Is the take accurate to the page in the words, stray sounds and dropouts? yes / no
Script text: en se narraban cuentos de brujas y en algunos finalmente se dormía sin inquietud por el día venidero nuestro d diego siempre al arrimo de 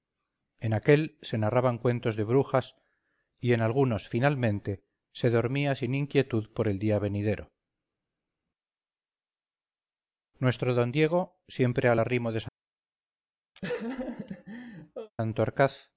no